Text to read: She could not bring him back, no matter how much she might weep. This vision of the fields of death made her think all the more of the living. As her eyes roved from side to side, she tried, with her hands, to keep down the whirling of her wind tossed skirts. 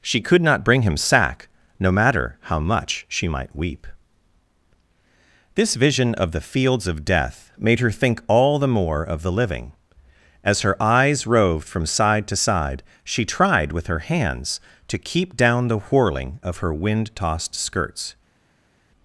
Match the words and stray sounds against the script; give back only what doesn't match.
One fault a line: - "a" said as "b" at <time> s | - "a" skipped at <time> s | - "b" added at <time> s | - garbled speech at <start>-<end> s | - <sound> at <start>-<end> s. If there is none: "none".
- "back" said as "sack" at 1.0 s